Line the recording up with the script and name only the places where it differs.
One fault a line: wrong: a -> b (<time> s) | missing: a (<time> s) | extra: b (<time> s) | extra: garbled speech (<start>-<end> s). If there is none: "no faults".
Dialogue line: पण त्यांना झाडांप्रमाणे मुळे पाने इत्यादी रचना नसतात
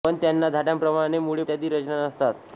missing: पाने (1.4 s)